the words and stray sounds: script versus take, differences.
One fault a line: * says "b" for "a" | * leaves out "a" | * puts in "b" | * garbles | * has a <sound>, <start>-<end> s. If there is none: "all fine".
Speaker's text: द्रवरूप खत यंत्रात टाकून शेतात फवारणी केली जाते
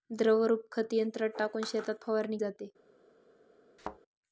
* leaves out "केली"
* has a thud, 3.8-4.0 s